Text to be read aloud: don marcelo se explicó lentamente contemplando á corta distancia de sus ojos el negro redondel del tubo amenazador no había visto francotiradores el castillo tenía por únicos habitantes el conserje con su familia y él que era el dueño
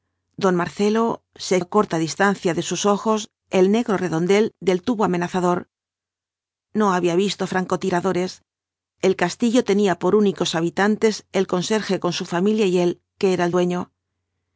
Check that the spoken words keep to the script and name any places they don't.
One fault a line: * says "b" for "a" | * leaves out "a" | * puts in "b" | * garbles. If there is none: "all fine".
* leaves out "explicó lentamente contemplando"